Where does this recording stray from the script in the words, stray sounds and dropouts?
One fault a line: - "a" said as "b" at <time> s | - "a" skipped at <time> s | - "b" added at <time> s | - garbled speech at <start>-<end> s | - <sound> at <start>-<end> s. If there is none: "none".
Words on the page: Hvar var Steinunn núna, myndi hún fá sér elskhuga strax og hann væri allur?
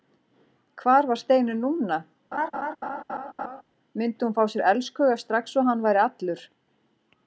- laugh at 2.3-3.6 s